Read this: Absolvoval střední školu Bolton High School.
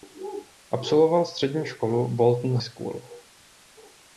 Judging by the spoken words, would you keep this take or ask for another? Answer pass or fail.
fail